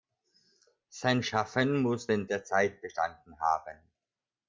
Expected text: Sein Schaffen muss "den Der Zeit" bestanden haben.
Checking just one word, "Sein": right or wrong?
right